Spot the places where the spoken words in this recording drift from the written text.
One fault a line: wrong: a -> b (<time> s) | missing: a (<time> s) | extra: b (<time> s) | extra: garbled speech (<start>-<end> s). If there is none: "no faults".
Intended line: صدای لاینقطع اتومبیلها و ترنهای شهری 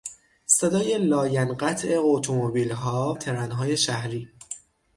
missing: و (3.2 s)